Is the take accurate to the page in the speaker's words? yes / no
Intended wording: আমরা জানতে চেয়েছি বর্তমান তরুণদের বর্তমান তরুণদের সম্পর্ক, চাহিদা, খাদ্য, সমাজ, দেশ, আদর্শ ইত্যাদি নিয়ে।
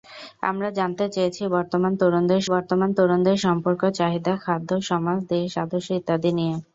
yes